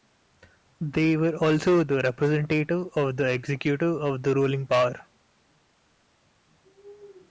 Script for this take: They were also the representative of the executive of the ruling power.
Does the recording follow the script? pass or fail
pass